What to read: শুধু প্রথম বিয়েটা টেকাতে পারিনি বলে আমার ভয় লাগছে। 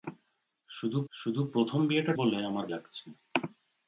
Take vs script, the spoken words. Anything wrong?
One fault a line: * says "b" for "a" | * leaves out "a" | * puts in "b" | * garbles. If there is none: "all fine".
* puts in "শুধু"
* leaves out "টেকাতে পারিনি"
* leaves out "ভয়"